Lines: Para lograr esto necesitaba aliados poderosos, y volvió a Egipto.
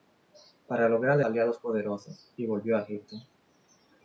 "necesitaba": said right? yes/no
no